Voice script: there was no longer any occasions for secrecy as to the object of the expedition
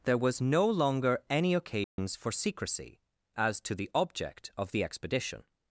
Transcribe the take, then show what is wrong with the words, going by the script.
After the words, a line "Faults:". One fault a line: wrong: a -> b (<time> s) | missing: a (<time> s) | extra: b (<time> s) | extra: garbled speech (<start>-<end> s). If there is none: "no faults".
there was no longer any occasions for secrecy as to the object of the expedition
Faults:
no faults